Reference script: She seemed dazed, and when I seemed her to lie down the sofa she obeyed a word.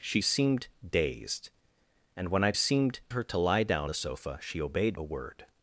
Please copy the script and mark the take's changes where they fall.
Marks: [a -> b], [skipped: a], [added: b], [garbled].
She seemed dazed, and when I seemed her to lie down the sofa she obeyed a word.